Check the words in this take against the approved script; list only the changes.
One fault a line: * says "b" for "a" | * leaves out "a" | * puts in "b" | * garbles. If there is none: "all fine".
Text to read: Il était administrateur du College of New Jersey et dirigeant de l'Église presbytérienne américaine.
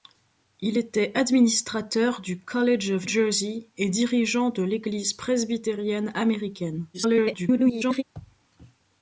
* leaves out "New"
* garbles